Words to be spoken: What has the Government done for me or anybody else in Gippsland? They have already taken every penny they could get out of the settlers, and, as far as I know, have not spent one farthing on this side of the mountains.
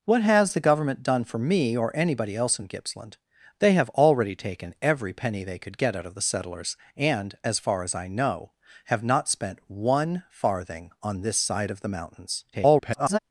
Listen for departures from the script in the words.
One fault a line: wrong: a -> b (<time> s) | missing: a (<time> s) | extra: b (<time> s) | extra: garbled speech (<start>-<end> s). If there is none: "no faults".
extra: garbled speech (12.5-13.2 s)